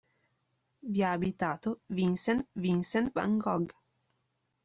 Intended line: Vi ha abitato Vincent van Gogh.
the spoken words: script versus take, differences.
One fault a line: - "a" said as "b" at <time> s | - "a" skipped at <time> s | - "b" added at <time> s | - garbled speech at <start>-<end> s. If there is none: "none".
- "Vincent" added at 2.5 s